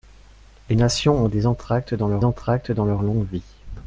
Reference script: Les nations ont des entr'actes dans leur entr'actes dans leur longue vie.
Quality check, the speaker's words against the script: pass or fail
pass